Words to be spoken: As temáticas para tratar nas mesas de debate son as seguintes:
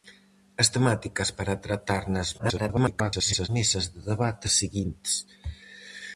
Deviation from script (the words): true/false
true